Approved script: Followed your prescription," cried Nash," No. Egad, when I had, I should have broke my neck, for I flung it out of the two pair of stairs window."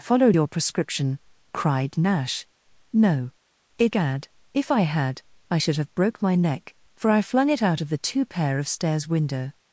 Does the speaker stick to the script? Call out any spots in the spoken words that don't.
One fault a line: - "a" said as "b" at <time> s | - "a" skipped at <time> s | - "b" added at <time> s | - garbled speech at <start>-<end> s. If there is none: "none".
- "when" said as "if" at 4.5 s